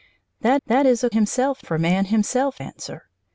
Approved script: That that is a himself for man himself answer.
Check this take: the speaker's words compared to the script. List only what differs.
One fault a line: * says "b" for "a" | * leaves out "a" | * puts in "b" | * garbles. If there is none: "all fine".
all fine